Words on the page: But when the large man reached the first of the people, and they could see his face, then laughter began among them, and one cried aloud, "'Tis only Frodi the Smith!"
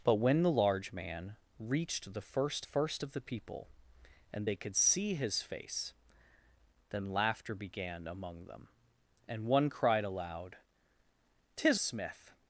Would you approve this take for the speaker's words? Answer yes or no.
no